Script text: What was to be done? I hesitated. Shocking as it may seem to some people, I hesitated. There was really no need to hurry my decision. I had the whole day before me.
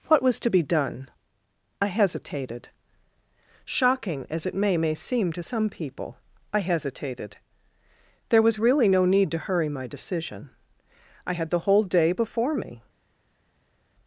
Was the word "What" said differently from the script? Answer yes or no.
no